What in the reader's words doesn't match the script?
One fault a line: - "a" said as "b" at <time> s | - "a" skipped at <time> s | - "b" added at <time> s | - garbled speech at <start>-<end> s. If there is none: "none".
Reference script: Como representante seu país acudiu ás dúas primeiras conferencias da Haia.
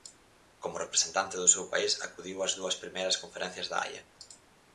- "do" added at 1.4 s